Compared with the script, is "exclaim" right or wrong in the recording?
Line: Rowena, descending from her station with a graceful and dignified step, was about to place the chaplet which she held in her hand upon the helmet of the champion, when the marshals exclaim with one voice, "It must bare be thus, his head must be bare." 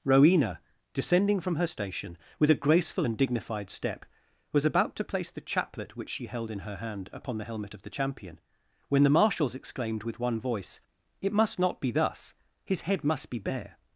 wrong